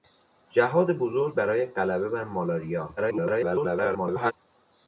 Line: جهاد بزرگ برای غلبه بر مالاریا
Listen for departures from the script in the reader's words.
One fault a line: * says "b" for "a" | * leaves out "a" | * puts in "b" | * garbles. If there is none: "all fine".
* garbles